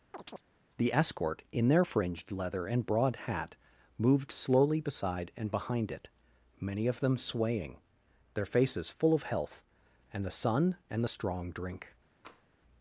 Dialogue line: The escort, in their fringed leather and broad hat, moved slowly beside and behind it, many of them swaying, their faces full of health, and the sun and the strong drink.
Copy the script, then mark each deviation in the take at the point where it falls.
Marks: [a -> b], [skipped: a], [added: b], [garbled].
The escort, in their fringed leather and broad hat, moved slowly beside and behind it, many of them swaying, their faces full of health, and the sun and the strong drink.